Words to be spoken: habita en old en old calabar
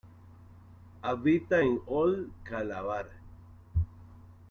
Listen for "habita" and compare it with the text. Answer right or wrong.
right